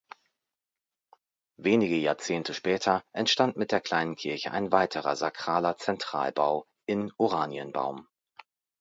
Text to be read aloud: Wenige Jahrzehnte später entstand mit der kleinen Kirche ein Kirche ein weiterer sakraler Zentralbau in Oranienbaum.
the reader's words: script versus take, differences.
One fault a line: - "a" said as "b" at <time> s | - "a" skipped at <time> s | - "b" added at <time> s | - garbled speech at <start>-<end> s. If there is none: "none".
- "Kirche ein" skipped at 4.7 s